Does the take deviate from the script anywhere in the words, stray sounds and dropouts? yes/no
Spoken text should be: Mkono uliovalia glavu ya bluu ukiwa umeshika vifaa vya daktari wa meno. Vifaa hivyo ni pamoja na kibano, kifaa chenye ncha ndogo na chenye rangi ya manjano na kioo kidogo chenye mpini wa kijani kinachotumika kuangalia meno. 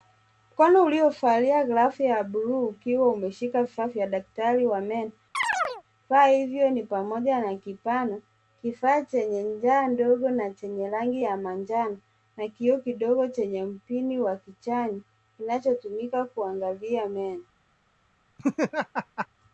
yes